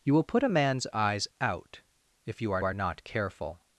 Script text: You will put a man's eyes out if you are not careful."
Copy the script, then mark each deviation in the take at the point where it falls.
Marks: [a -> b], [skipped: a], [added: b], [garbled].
You will put a man's eyes out if you are [added: are] not careful."